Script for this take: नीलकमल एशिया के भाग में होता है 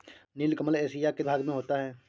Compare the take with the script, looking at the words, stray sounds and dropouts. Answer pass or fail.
pass